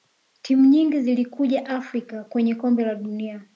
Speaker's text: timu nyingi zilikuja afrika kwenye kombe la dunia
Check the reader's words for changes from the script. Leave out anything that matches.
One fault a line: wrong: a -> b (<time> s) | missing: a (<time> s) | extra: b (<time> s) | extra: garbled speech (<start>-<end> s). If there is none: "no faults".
no faults